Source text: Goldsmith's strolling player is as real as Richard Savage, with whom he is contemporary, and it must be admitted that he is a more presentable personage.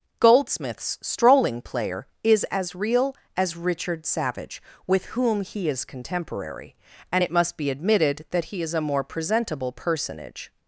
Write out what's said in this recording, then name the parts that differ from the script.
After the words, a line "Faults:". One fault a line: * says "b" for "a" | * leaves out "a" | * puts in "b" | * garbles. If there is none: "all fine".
Goldsmith's strolling player is as real as Richard Savage, with whom he is contemporary, and it must be admitted that he is a more presentable personage.
Faults:
all fine